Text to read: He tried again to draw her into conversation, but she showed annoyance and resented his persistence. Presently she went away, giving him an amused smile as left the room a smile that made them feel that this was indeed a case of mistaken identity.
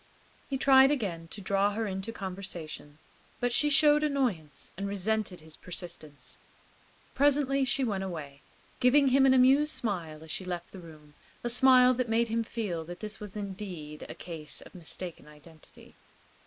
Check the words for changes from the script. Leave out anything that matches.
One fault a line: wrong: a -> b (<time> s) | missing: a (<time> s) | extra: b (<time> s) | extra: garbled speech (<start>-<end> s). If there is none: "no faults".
extra: she (10.3 s)
wrong: them -> him (12.3 s)